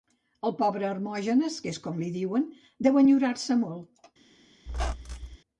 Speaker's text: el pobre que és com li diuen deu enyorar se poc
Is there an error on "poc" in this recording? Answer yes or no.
yes